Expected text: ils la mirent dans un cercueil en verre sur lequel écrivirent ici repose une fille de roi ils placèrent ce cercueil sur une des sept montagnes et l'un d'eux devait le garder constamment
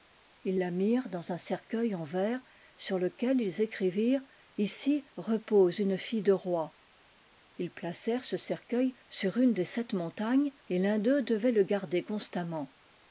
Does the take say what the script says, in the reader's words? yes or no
no